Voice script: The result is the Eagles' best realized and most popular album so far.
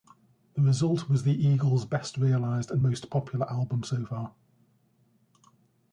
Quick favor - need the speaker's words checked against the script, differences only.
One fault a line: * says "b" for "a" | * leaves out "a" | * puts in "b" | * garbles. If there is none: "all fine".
* says "was" for "is"